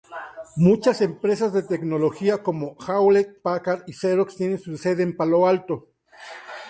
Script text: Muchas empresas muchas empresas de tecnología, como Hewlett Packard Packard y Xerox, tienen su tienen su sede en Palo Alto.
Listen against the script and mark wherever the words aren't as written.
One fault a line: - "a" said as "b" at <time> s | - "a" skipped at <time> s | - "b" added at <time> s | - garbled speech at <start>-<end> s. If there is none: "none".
- "muchas empresas" skipped at 1.5 s
- "Packard" skipped at 3.8 s
- "tienen su" skipped at 4.8 s